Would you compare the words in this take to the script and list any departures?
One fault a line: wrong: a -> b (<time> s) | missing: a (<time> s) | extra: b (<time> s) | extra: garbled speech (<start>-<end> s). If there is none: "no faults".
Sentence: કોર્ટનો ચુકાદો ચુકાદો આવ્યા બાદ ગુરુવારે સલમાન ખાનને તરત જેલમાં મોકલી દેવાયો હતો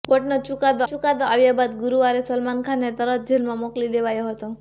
no faults